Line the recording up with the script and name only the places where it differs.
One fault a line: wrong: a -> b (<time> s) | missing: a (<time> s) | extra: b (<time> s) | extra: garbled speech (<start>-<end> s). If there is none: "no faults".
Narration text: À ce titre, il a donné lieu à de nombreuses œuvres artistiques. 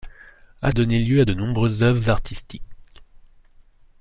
missing: ce titre il (0.7 s)